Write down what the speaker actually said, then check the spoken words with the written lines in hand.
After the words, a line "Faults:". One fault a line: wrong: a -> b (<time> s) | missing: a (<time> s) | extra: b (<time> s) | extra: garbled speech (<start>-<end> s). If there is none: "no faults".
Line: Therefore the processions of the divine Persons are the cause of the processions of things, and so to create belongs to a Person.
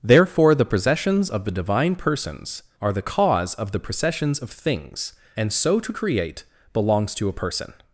Therefore the processions of the divine Persons are the cause of the processions of things, and so to create belongs to a Person.
Faults:
no faults